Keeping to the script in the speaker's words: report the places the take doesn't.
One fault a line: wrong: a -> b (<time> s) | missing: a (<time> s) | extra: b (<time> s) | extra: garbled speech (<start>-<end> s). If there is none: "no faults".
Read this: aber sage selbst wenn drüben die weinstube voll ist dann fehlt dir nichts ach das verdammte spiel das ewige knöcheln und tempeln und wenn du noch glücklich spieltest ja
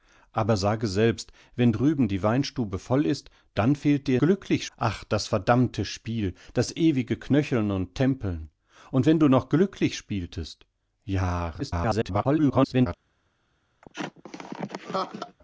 wrong: nichts -> glücklich (4.2 s)
extra: garbled speech (11.6-12.9 s)